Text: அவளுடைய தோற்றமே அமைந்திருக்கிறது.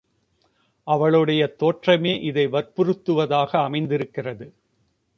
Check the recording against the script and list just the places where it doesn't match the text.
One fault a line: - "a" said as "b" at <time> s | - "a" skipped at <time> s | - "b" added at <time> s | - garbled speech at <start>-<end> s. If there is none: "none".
- "இதை வற்புறுத்துவதாக" added at 2.2 s